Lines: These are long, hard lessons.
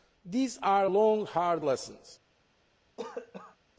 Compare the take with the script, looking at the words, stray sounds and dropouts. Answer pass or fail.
fail